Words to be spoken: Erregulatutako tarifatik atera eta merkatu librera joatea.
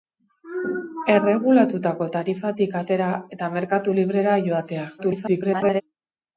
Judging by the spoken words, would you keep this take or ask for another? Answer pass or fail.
fail